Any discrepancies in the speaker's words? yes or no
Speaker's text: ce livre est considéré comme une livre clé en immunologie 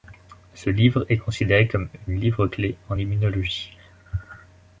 no